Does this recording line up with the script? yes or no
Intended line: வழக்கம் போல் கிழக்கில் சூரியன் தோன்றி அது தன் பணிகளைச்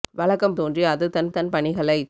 no